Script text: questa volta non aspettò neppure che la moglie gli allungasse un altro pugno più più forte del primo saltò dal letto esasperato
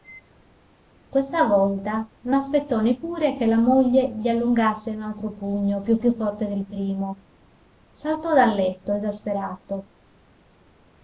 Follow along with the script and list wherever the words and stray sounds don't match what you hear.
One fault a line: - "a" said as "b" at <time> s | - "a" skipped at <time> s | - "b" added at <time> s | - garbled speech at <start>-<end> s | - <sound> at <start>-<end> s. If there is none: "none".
none